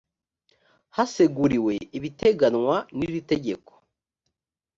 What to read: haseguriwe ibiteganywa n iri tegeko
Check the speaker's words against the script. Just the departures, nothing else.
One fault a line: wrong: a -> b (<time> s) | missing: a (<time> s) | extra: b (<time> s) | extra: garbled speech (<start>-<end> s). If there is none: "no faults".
no faults